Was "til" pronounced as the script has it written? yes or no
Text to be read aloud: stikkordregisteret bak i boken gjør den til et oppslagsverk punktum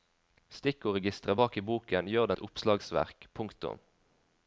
no